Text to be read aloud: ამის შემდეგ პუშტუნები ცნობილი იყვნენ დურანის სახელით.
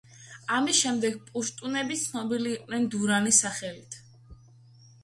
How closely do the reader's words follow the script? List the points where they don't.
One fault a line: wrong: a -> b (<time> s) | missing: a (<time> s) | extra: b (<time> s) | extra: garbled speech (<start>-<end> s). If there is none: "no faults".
no faults